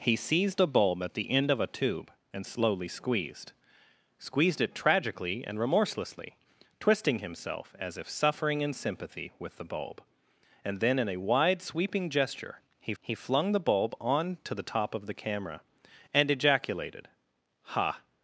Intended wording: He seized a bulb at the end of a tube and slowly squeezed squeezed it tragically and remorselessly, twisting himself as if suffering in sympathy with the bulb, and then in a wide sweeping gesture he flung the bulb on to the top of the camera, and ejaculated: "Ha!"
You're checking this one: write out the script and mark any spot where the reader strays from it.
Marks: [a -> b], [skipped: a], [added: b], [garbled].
He seized a bulb at the end of a tube and slowly squeezed squeezed it tragically and remorselessly, twisting himself as if suffering in sympathy with the bulb, and then in a wide sweeping gesture he [added: he] flung the bulb on to the top of the camera, and ejaculated: "Ha!"